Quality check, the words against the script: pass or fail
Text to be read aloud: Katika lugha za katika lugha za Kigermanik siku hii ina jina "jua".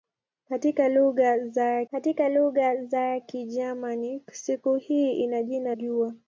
pass